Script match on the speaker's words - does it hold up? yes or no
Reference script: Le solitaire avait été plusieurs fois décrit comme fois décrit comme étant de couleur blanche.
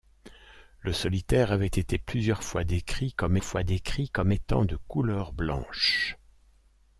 yes